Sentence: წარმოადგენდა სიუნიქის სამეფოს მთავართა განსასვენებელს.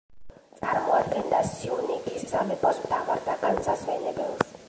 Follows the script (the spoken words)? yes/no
yes